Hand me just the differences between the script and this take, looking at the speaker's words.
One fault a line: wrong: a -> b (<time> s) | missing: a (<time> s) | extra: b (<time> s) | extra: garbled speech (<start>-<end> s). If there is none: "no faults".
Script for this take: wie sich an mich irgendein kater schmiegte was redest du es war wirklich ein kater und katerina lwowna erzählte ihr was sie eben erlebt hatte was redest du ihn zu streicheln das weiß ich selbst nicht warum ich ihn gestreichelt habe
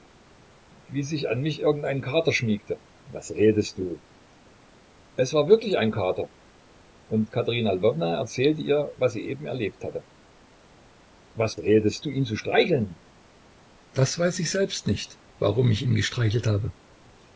no faults